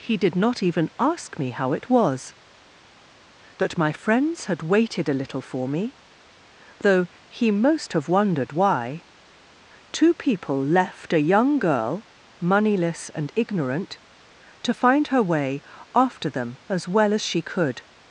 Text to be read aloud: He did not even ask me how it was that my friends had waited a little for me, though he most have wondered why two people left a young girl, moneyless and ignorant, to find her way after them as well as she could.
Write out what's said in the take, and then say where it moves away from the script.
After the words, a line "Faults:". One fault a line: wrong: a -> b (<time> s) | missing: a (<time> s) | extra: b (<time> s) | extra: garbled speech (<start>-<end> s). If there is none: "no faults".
He did not even ask me how it was that my friends had waited a little for me, though he most have wondered why two people left a young girl, moneyless and ignorant, to find her way after them as well as she could.
Faults:
no faults